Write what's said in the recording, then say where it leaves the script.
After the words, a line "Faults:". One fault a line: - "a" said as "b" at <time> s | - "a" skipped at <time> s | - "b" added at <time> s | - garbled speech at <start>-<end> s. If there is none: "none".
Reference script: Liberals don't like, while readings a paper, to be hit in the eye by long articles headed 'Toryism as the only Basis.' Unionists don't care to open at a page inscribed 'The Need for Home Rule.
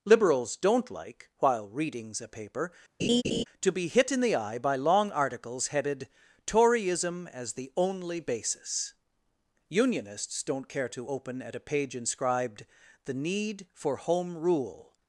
Liberals don't like, while readings a paper, to be hit in the eye by long articles headed 'Toryism as the only Basis.' Unionists don't care to open at a page inscribed 'The Need for Home Rule.
Faults:
none